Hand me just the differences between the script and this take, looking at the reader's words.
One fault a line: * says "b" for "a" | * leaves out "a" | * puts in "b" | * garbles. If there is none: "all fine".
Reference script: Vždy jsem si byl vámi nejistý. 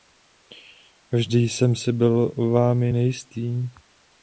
all fine